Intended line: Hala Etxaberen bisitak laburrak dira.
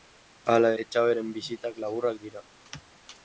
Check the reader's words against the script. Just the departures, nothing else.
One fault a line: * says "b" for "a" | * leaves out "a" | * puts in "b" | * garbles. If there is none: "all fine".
all fine